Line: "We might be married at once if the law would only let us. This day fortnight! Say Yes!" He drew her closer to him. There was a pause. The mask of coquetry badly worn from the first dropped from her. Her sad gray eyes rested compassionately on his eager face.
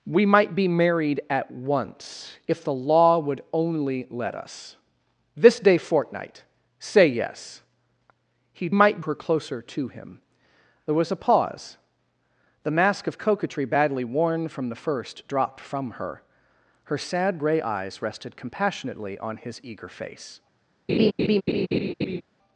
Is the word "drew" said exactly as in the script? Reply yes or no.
no